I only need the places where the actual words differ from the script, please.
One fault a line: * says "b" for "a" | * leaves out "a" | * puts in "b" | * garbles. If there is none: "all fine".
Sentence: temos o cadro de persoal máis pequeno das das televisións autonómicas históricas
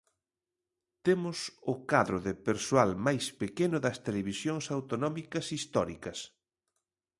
* leaves out "das"